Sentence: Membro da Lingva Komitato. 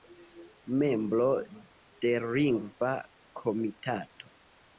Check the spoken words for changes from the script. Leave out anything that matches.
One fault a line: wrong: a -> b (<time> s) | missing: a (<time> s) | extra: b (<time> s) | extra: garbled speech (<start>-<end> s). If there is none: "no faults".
wrong: da -> de (2.0 s)